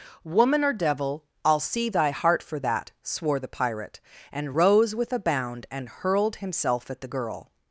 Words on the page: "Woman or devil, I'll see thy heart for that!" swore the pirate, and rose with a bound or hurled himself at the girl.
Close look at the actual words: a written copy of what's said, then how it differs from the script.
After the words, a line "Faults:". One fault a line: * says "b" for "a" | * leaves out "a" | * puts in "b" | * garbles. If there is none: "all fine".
"Woman or devil, I'll see thy heart for that!" swore the pirate, and rose with a bound and hurled himself at the girl.
Faults:
* says "and" for "or"